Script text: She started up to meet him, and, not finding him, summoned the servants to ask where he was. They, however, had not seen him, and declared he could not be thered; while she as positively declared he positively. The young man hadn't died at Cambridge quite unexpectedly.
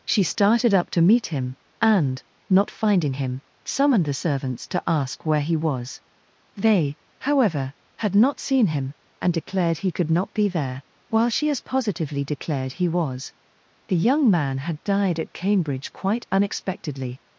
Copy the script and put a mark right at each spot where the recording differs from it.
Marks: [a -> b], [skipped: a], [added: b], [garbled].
She started up to meet him, and, not finding him, summoned the servants to ask where he was. They, however, had not seen him, and declared he could not be [thered; -> there] while she as positively declared he [positively. -> was] The young man [hadn't -> had] died at Cambridge quite unexpectedly.